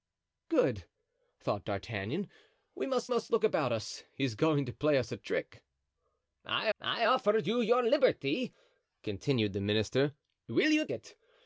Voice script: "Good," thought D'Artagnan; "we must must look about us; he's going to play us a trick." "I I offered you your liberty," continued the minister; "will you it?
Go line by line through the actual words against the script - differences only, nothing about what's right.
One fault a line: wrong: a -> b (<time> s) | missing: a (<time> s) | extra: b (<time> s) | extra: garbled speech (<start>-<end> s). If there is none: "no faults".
no faults